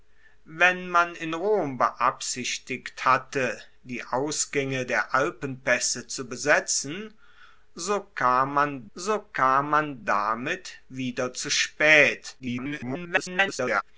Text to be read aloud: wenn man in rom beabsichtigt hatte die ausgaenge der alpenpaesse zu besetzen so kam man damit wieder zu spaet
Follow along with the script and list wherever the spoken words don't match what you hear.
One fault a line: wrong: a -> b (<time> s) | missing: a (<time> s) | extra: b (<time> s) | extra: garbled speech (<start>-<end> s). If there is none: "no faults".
extra: so kam man (8.9 s)
extra: garbled speech (12.4-13.8 s)